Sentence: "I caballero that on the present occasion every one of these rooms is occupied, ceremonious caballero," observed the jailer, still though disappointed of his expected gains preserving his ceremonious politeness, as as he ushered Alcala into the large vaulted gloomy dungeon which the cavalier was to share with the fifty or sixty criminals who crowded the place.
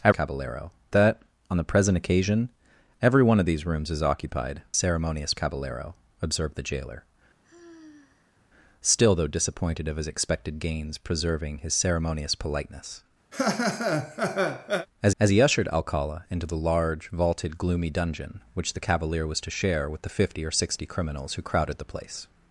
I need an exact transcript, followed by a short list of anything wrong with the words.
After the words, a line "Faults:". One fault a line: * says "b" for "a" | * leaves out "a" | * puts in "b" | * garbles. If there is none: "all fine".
"I caballero that on the present occasion every one of these rooms is occupied, ceremonious caballero," observed the jailer, still though disappointed of his expected gains preserving his ceremonious politeness, as as he ushered Alcala into the large vaulted gloomy dungeon which the cavalier was to share with the fifty or sixty criminals who crowded the place.
Faults:
all fine